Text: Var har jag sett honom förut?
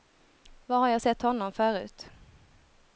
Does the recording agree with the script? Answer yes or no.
yes